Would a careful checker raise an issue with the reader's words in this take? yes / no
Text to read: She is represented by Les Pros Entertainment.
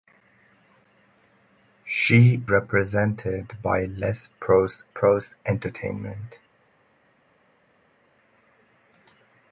yes